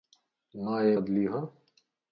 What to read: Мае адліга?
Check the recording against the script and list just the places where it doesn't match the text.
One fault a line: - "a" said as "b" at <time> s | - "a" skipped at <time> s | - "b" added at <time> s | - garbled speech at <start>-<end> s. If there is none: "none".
none